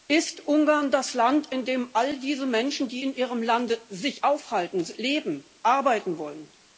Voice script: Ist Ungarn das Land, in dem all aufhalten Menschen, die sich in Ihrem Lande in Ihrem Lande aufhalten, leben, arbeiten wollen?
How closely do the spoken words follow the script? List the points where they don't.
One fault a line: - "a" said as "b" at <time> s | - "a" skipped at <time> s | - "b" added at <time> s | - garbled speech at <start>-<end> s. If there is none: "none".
- "aufhalten" said as "diese" at 2.2 s
- "in Ihrem Lande" skipped at 3.8 s